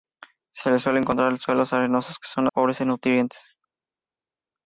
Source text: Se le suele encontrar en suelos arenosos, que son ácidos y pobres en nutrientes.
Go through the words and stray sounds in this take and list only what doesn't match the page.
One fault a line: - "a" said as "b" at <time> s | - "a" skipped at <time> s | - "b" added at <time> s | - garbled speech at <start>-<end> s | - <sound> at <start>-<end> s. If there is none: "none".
- "ácidos" skipped at 2.5 s